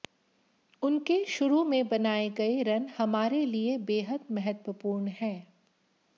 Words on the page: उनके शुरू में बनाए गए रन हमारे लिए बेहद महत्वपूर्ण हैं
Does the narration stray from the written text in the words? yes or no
no